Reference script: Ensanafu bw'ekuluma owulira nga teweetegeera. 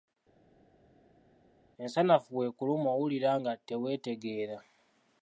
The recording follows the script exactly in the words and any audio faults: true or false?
true